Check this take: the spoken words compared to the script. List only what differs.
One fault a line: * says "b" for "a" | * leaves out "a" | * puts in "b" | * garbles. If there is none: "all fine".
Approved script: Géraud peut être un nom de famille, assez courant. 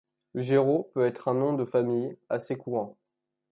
all fine